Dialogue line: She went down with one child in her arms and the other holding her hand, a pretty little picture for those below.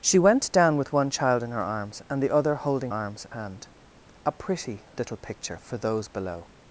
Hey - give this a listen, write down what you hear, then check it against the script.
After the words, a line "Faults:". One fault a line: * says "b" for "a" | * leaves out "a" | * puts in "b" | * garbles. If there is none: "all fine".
She went down with one child in her arms and the other holding arms hand, a pretty little picture for those below.
Faults:
* says "arms" for "her"